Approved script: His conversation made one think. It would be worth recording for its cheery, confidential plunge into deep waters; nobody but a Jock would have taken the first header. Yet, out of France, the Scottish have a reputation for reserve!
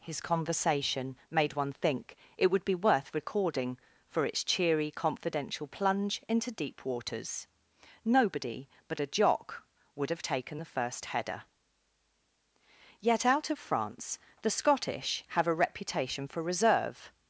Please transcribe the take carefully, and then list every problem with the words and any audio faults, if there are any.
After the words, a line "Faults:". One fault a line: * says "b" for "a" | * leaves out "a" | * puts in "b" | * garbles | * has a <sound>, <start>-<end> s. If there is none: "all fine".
His conversation made one think. It would be worth recording for its cheery, confidential plunge into deep waters; nobody but a Jock would have taken the first header. Yet, out of France, the Scottish have a reputation for reserve!
Faults:
all fine